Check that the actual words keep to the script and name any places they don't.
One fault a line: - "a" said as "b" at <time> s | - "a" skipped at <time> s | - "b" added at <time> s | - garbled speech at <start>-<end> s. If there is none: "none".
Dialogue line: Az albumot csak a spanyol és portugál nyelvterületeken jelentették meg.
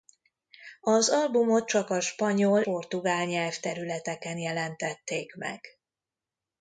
- "és" skipped at 2.6 s